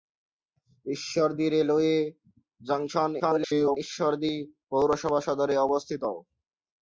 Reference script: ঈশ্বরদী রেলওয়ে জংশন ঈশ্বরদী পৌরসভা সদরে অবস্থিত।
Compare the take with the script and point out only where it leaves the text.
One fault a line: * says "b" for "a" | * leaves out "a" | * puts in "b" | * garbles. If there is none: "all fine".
* garbles